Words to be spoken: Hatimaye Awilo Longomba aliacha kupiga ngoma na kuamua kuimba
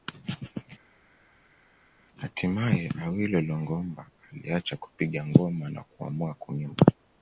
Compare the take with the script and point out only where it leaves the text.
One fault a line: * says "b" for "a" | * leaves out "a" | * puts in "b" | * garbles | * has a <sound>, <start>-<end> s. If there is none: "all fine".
all fine